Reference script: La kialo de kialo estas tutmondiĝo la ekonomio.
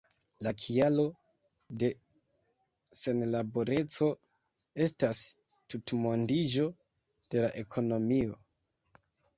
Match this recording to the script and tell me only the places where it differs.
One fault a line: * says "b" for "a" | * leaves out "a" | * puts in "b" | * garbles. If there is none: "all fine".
* says "senlaboreco" for "kialo"
* puts in "de"